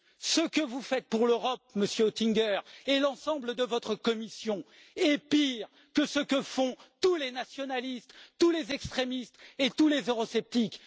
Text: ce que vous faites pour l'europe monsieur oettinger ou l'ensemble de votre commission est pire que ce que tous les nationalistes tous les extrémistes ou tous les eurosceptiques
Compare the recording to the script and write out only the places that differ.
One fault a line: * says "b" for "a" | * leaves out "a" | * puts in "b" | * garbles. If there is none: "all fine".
* says "et" for "ou"
* puts in "font"
* says "et" for "ou"